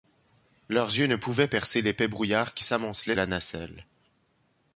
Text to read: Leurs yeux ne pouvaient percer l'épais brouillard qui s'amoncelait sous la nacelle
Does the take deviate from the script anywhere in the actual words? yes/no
yes